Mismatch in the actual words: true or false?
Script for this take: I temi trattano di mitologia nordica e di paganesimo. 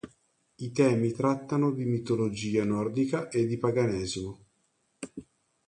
false